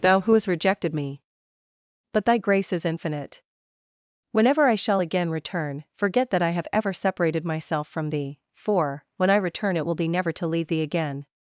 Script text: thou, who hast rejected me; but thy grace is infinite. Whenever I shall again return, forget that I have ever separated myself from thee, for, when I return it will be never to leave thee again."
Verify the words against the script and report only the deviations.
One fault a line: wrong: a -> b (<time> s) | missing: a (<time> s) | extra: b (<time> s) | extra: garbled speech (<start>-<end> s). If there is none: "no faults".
no faults